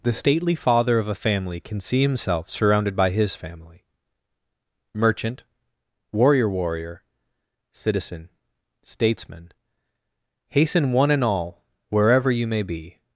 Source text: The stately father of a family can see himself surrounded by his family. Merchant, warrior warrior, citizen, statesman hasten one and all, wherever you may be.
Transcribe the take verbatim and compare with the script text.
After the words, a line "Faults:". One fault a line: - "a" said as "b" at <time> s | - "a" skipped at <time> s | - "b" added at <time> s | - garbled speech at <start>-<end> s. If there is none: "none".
The stately father of a family can see himself surrounded by his family. Merchant, warrior warrior, citizen, statesman hasten one and all, wherever you may be.
Faults:
none